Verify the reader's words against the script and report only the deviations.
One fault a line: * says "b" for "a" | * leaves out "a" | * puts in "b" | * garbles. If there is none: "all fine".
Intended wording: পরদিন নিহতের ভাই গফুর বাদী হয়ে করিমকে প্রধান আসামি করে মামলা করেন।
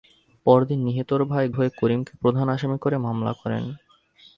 * leaves out "গফুর বাদী"